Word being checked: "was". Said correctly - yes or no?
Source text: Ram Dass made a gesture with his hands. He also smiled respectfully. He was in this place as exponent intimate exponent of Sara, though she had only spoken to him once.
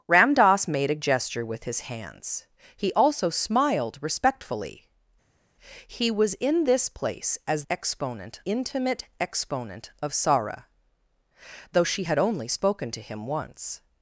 yes